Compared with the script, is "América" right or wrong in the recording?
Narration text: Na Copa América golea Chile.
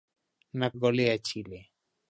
wrong